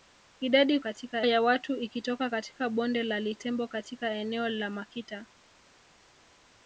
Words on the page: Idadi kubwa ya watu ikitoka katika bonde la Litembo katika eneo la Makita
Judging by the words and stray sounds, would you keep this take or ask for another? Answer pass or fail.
fail